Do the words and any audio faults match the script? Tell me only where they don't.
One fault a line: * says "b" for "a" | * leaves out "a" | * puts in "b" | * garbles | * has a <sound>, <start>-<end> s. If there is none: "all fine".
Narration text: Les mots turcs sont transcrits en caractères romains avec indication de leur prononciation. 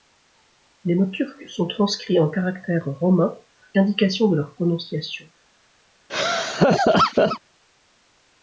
* leaves out "avec"
* has a laugh, 6.1-7.4 s